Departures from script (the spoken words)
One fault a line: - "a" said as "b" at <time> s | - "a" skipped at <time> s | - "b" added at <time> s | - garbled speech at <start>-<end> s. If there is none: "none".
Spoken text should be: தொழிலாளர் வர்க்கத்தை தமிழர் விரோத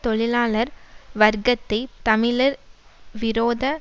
none